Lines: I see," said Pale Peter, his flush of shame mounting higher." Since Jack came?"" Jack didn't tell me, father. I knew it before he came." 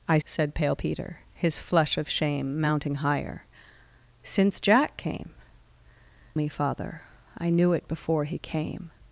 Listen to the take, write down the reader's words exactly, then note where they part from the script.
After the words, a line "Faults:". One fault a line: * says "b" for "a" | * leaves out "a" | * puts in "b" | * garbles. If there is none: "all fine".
I," said Pale Peter, his flush of shame mounting higher." Since Jack came?"" Me, father. I knew it before he came."
Faults:
* leaves out "see"
* leaves out "Jack didn't tell"